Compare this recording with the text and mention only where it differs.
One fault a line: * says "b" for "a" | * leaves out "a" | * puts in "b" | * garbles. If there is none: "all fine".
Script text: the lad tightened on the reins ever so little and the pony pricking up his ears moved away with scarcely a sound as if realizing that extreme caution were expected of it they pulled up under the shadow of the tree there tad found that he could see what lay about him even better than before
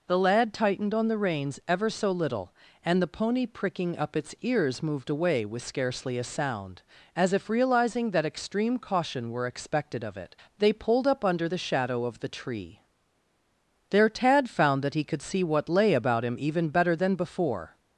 * says "its" for "his"